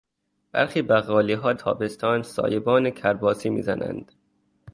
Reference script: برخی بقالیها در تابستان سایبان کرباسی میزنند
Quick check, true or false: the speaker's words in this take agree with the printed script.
false